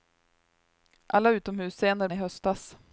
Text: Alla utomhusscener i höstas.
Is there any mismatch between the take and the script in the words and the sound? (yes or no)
no